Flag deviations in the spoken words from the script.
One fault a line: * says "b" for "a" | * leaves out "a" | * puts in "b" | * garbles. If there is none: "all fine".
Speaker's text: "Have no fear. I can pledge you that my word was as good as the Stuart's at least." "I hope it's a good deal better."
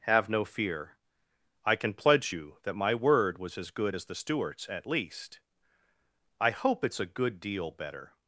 all fine